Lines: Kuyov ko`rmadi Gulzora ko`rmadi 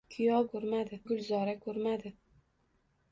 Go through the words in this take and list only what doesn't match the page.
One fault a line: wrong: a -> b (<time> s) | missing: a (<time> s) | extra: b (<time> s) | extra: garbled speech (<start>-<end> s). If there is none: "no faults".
no faults